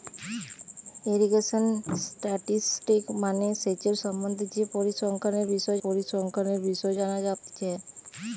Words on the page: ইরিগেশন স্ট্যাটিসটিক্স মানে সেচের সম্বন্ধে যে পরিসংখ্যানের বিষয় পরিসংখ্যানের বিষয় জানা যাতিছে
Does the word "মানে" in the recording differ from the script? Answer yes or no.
no